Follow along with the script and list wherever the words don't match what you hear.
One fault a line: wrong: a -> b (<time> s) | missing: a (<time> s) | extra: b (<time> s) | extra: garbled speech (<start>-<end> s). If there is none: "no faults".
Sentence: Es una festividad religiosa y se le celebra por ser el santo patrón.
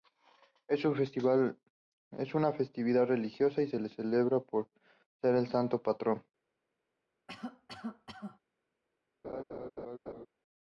no faults